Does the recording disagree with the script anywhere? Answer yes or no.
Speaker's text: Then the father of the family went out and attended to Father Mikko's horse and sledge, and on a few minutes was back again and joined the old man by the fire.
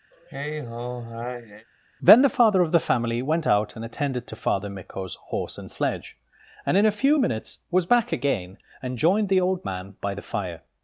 yes